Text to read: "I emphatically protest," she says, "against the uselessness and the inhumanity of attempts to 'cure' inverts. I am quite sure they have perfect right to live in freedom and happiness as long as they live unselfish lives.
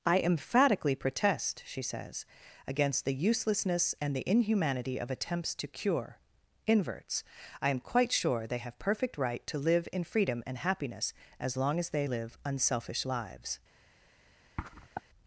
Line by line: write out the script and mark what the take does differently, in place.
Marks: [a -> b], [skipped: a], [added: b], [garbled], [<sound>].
"I emphatically protest," she says, "against the uselessness and the inhumanity of attempts to 'cure' inverts. I am quite sure they have perfect right to live in freedom and happiness as long as they live unselfish lives. [sniff]